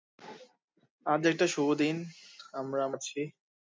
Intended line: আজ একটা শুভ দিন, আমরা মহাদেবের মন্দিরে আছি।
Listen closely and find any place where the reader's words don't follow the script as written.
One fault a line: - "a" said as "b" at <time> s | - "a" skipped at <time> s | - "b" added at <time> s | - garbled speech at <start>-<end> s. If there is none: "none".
- "মহাদেবের মন্দিরে" skipped at 2.8 s